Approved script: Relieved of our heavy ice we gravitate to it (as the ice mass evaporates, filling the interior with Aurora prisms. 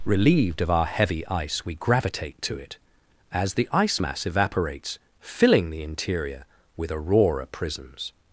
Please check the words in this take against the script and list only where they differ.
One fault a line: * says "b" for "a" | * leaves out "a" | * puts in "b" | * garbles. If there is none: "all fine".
all fine